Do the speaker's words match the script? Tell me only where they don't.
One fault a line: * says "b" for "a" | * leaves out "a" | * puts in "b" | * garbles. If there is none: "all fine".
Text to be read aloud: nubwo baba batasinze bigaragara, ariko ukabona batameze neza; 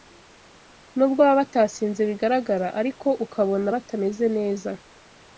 all fine